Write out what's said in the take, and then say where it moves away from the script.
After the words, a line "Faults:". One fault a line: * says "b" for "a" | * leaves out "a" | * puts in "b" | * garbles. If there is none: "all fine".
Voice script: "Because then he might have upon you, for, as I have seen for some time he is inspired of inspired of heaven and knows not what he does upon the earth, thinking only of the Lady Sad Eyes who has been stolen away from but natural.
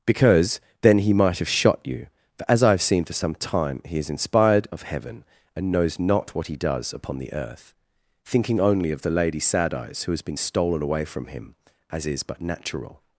"Because then he might have shot you, for, as I have seen for some time he is inspired of heaven and knows not what he does upon the earth, thinking only of the Lady Sad Eyes who has been stolen away from him, as is but natural.
Faults:
* says "shot" for "upon"
* leaves out "inspired of"
* puts in "him as is"